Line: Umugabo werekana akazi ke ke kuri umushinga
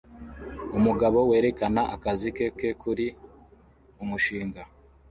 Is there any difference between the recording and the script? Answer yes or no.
no